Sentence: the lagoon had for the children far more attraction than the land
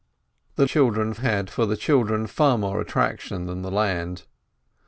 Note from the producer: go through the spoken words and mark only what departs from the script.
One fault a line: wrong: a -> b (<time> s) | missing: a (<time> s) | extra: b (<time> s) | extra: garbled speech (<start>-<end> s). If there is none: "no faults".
wrong: lagoon -> children (0.6 s)